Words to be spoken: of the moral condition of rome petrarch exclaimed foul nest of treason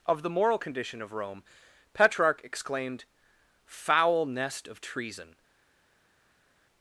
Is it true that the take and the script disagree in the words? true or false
false